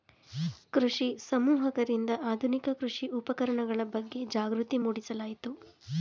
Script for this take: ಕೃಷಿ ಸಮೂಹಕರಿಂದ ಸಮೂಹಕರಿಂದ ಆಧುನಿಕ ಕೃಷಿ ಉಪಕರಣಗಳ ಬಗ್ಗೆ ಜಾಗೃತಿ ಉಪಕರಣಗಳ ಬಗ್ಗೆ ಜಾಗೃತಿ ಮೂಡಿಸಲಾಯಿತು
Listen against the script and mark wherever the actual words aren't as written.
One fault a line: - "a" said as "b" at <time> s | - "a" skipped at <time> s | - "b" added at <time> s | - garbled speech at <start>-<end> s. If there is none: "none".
- "ಸಮೂಹಕರಿಂದ" skipped at 2.1 s
- "ಉಪಕರಣಗಳ ಬಗ್ಗೆ ಜಾಗೃತಿ" skipped at 4.8 s